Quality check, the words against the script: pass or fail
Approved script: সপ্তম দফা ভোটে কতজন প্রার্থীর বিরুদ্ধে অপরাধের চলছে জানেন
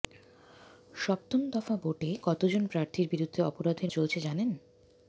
pass